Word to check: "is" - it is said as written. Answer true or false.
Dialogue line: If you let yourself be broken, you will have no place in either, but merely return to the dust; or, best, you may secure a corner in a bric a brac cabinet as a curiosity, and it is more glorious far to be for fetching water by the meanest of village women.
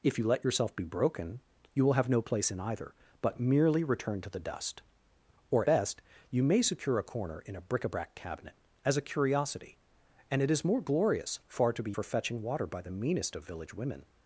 true